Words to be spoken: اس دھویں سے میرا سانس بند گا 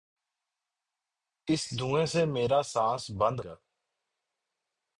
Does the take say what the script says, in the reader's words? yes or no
yes